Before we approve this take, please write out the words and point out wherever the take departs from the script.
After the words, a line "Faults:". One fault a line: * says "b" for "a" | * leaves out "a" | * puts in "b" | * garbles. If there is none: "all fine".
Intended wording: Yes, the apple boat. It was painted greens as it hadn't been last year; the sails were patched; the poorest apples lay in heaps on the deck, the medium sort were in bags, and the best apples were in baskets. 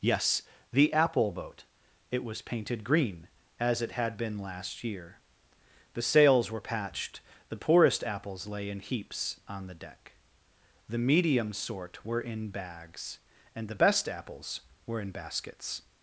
Yes, the apple boat. It was painted green as it had been last year; the sails were patched; the poorest apples lay in heaps on the deck, the medium sort were in bags, and the best apples were in baskets.
Faults:
* says "green" for "greens"
* says "had" for "hadn't"